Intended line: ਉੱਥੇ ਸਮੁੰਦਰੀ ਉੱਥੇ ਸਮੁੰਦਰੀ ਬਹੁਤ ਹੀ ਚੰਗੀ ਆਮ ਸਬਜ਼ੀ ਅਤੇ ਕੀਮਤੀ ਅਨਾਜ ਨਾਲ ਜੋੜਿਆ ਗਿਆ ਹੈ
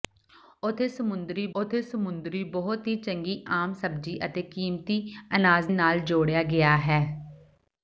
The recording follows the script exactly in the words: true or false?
true